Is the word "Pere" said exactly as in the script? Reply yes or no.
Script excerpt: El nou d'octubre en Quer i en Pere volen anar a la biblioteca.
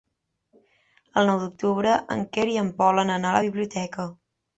no